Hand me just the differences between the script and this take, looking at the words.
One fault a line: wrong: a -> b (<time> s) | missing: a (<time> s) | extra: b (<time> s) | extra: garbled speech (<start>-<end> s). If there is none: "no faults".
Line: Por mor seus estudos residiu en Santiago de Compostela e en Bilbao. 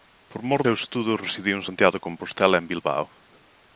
no faults